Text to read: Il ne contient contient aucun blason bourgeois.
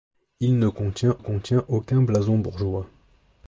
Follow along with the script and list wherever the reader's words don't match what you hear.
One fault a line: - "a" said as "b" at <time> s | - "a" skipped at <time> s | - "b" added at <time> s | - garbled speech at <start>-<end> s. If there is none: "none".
none